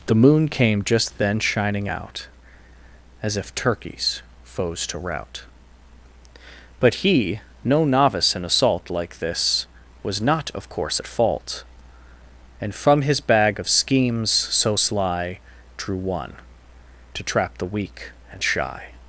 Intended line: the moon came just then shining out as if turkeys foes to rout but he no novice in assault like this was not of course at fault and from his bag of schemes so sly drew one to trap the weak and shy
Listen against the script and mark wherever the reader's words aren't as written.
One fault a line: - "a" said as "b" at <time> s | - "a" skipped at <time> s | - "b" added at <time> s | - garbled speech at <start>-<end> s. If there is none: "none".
none